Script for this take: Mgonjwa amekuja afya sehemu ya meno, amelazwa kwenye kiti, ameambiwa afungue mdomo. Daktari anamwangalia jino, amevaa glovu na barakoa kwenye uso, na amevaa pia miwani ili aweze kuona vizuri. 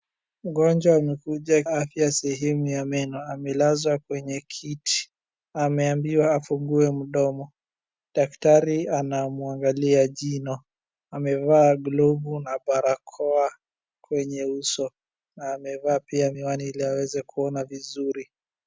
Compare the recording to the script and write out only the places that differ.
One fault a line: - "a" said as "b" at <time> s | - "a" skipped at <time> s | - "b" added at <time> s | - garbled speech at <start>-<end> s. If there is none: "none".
none